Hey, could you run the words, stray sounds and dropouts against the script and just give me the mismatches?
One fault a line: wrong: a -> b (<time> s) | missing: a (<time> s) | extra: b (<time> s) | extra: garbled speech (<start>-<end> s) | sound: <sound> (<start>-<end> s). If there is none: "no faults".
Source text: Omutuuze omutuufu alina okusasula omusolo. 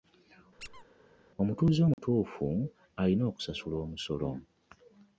sound: squeak (0.6-0.8 s)
sound: dropout (1.9-2.0 s)